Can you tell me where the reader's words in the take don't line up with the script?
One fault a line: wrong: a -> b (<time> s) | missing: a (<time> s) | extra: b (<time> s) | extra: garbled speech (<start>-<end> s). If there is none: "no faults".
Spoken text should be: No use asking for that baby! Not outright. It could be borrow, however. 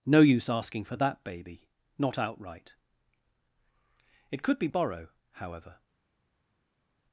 no faults